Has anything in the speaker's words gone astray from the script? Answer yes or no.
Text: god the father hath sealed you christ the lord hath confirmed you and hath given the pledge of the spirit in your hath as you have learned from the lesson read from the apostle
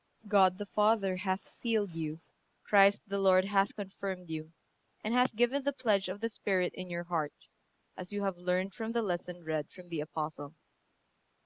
yes